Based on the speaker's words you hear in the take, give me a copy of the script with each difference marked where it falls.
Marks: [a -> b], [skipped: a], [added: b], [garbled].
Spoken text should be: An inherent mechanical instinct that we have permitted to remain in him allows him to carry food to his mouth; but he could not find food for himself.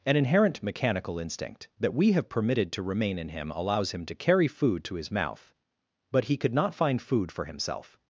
An inherent mechanical instinct that we have permitted to remain in him allows him to carry food to his mouth; but he could not find food for himself.